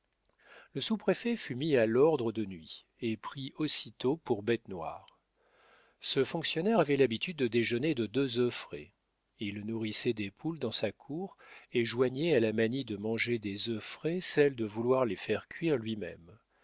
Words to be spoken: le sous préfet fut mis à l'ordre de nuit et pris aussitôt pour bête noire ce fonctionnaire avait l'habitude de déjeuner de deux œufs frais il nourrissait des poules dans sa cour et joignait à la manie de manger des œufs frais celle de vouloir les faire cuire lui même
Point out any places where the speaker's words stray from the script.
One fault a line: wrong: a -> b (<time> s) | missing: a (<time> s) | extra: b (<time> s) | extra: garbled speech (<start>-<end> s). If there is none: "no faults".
no faults